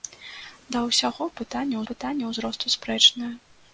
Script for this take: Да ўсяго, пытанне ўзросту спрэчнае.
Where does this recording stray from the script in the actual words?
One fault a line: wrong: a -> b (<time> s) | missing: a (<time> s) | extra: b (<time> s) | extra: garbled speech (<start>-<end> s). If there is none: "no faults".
extra: пытанне (1.9 s)